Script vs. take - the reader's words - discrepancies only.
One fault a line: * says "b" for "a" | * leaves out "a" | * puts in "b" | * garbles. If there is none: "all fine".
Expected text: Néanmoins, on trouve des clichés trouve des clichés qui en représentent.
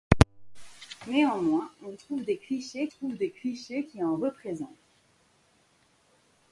all fine